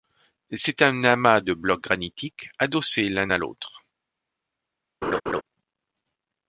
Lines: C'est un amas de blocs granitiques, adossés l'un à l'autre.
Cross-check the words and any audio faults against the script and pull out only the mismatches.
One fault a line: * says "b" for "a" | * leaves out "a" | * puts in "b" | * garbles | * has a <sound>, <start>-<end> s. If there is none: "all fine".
* has a laugh, 5.0-5.4 s